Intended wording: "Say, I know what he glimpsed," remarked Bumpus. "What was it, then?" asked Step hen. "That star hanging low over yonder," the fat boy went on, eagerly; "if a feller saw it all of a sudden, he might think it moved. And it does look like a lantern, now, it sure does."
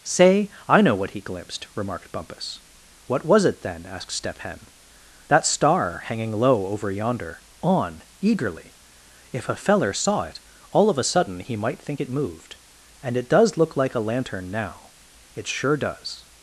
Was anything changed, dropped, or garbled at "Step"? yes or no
no